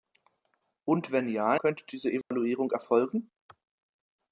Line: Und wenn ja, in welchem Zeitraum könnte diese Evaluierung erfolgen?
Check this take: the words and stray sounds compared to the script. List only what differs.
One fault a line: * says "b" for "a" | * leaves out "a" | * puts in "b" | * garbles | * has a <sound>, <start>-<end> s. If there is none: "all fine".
* leaves out "in welchem Zeitraum"
* has a dropout, 2.2-2.3 s